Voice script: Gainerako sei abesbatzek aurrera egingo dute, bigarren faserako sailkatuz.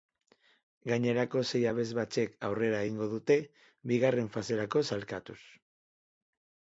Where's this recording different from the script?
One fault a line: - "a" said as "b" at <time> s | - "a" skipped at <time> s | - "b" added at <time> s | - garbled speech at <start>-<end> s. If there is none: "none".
none